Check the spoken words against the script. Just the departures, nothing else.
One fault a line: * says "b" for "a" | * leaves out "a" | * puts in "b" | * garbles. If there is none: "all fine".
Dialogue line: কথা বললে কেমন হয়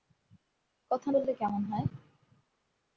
all fine